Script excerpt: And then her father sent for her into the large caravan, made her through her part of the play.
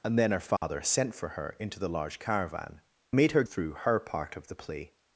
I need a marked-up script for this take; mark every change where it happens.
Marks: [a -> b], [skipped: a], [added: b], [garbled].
And then her father sent for her into the large caravan, made her through her part of the play.